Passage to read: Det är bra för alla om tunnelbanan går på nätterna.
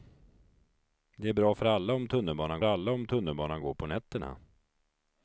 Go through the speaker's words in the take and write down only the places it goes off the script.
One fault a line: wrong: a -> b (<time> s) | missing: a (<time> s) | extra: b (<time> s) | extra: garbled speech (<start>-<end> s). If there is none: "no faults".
extra: alla om tunnelbanan (2.6 s)